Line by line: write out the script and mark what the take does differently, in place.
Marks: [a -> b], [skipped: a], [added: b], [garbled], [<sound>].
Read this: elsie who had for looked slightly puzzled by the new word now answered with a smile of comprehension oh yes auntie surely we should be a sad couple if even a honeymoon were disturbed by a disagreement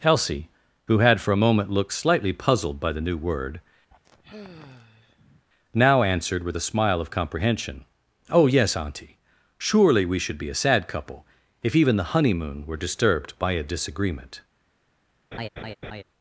elsie who had for [added: a moment] looked slightly puzzled by the new word [sigh] now answered with a smile of comprehension oh yes auntie surely we should be a sad couple if even [a -> the] honeymoon were disturbed by a disagreement [laugh]